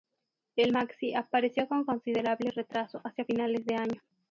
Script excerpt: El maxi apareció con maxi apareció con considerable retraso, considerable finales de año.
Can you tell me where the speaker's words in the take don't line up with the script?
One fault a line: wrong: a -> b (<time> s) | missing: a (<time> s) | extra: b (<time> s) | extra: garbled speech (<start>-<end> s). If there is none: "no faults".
missing: maxi apareció con (1.9 s)
wrong: considerable -> hacia (3.0 s)